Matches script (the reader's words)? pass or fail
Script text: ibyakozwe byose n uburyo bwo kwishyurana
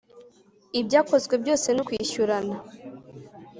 fail